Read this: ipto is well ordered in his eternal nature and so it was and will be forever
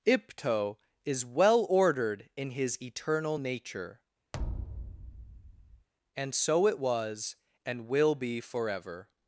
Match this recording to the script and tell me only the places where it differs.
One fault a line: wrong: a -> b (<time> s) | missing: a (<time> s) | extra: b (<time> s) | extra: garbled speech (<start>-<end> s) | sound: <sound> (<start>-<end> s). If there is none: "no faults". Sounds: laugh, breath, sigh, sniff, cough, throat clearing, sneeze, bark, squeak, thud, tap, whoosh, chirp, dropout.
sound: thud (4.3-5.9 s)